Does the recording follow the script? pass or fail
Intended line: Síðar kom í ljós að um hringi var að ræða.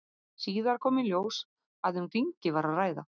pass